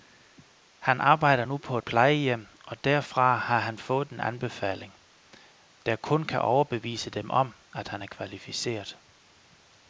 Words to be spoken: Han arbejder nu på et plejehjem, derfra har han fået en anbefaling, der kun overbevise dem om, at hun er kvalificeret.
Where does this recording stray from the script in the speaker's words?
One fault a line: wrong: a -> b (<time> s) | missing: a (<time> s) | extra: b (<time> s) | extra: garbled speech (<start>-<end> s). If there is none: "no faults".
extra: og (2.6 s)
extra: kan (6.2 s)
wrong: hun -> han (7.9 s)